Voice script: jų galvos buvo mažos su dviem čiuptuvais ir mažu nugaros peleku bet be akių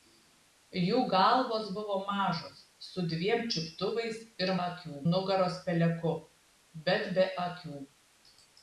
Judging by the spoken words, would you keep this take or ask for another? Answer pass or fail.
fail